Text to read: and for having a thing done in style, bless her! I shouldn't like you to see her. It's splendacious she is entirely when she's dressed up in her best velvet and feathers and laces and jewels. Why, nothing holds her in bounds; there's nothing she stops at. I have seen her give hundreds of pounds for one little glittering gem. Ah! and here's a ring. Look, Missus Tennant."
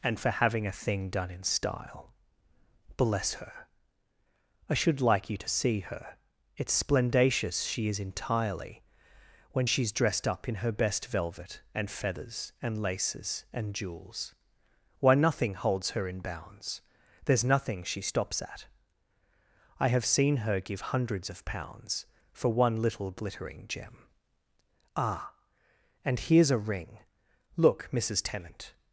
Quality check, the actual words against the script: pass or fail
fail